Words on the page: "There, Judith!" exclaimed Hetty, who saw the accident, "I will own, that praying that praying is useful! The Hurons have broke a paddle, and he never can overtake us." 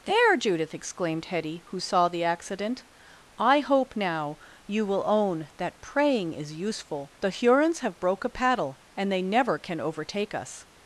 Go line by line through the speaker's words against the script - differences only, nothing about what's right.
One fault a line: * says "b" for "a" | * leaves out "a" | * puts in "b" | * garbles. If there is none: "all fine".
* puts in "hope now you"
* leaves out "that praying"
* says "they" for "he"